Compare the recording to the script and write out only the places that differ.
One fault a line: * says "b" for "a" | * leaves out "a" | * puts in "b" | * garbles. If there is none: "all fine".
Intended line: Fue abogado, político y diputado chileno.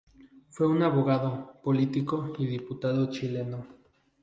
* puts in "un"